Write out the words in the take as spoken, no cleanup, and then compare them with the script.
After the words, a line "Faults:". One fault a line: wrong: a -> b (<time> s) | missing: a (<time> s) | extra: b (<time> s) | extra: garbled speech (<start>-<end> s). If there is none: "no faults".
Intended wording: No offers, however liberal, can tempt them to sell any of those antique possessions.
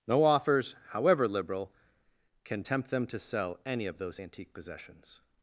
No offers, however liberal, can tempt them to sell any of those antique possessions.
Faults:
no faults